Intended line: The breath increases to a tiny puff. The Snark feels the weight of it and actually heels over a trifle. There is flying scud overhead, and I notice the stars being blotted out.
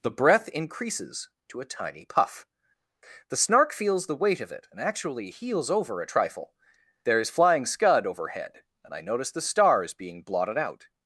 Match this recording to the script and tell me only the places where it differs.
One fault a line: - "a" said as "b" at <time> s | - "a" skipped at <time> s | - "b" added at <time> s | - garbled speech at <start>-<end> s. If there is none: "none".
none